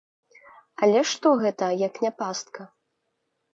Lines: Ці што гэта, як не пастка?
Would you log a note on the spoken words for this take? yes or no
yes